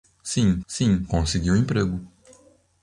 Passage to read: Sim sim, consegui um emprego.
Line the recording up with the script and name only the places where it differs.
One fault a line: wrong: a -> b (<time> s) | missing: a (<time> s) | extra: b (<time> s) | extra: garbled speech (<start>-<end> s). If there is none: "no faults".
no faults